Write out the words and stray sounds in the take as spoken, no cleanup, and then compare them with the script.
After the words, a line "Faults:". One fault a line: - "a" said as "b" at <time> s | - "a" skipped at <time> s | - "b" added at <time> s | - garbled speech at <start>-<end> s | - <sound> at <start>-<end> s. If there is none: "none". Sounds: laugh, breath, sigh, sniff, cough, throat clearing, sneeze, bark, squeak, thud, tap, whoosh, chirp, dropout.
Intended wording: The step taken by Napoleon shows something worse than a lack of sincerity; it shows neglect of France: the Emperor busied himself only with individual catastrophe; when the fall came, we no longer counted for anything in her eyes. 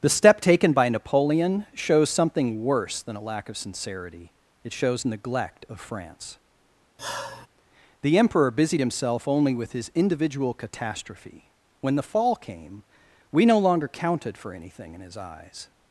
The step taken by Napoleon shows something worse than a lack of sincerity; it shows neglect of France: the Emperor busied himself only with his individual catastrophe; when the fall came, we no longer counted for anything in his eyes.
Faults:
- sigh at 7.0-7.5 s
- "his" added at 9.7 s
- "her" said as "his" at 15.0 s